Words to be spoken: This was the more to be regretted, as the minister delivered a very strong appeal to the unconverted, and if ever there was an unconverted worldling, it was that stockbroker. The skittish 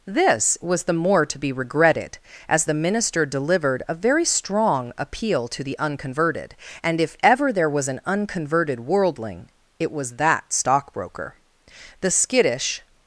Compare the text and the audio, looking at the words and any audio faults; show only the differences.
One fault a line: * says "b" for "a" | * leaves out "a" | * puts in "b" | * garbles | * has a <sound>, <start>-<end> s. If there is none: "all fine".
all fine